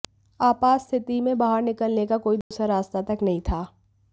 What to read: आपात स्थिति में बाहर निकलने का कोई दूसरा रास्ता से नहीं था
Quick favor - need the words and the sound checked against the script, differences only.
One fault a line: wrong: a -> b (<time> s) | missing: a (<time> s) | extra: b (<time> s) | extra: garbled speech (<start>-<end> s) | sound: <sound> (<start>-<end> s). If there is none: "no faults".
sound: dropout (2.4-2.5 s)
wrong: से -> तक (3.0 s)